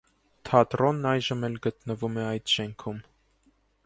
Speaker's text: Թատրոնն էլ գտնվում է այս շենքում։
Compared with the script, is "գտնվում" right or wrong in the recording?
right